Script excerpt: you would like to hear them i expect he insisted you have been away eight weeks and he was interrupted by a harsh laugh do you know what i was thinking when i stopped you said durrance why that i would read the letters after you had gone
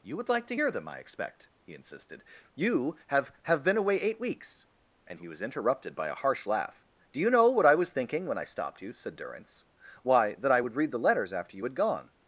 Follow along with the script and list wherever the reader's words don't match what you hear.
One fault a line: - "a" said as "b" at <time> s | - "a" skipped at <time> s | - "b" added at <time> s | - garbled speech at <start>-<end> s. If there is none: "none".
- "have" added at 3.4 s